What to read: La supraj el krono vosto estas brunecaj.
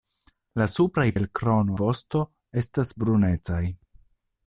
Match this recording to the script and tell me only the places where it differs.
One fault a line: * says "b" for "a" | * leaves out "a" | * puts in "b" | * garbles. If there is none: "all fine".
all fine